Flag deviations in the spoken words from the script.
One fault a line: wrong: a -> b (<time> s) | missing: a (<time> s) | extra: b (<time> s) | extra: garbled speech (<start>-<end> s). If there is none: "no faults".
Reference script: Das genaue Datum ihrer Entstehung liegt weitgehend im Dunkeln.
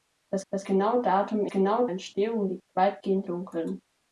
extra: das (0.5 s)
wrong: ihrer -> genaue (1.5 s)
missing: im (3.3 s)